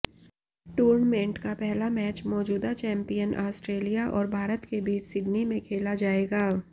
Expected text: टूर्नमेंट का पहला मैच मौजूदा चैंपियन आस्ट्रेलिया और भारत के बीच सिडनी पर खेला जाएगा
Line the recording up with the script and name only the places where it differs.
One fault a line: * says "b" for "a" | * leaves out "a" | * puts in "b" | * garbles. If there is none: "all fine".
* says "में" for "पर"